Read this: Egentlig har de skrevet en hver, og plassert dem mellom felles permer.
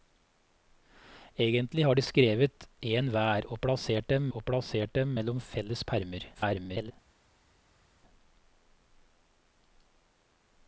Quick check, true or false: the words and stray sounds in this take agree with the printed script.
false